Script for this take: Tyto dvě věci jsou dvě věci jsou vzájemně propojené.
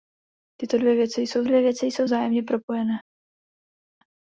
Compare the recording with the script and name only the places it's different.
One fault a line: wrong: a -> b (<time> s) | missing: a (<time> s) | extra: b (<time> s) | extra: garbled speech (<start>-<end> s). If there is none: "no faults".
no faults